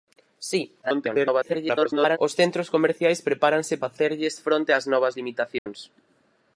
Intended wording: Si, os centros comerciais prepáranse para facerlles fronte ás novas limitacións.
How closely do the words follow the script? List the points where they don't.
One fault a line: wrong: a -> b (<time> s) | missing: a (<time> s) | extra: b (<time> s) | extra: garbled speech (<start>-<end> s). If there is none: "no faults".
extra: garbled speech (0.8-2.2 s)
missing: para (3.7 s)